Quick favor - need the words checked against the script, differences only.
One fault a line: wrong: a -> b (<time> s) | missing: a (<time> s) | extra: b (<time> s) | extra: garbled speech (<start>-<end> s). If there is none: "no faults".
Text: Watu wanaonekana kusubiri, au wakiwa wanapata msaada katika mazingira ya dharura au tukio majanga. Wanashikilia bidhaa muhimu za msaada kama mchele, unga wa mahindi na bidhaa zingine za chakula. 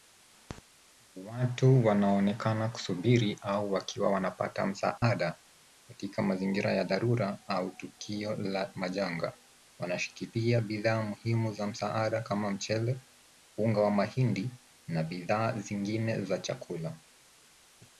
extra: la (8.3 s)